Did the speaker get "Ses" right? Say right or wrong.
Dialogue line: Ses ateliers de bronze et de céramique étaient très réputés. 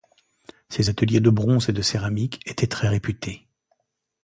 right